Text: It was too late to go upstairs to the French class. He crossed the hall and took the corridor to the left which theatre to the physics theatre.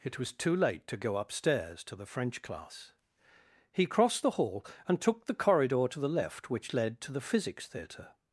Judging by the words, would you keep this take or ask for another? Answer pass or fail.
fail